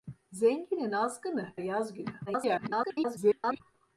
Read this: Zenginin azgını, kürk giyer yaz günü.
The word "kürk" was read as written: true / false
false